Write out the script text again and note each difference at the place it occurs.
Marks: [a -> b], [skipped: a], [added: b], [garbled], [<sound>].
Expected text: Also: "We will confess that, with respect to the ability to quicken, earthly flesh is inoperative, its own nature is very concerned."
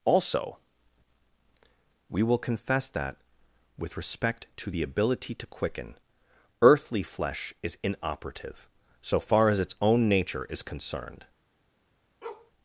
Also: "We will confess that, with respect to the ability to quicken, earthly flesh is inoperative, [added: so far as] its own nature is [skipped: very] concerned." [bark]